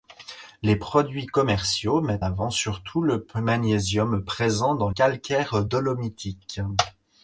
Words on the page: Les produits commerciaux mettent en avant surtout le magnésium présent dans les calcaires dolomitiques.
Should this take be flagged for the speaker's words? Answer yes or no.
yes